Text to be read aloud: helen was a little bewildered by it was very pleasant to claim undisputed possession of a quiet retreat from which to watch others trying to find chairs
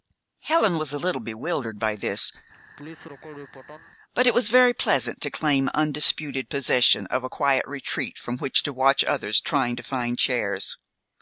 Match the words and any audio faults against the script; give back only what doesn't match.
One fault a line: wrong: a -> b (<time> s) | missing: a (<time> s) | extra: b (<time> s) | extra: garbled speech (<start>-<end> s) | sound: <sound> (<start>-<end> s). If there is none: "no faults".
extra: this but (1.9 s)
sound: laugh (2.5-3.9 s)